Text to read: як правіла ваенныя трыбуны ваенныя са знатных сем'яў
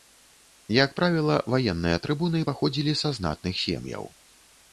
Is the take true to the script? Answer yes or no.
no